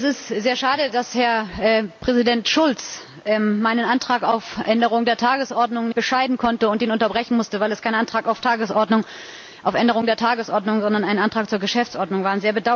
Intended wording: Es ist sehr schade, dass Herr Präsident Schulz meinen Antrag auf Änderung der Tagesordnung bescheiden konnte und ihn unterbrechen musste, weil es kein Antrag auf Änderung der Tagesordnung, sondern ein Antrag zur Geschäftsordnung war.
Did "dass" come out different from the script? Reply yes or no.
no